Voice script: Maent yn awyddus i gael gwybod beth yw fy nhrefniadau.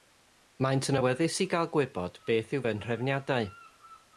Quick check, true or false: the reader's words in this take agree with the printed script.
true